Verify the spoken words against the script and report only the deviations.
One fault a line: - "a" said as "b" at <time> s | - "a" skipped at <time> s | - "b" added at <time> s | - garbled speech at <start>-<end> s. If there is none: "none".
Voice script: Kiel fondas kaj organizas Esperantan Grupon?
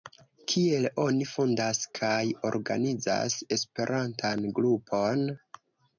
- "oni" added at 1.0 s